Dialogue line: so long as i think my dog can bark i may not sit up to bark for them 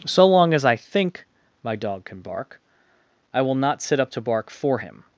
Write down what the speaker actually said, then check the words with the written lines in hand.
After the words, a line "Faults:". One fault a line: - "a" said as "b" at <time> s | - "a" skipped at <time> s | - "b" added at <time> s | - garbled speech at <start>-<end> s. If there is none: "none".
so long as i think my dog can bark i will not sit up to bark for him
Faults:
- "may" said as "will" at 3.4 s
- "them" said as "him" at 4.8 s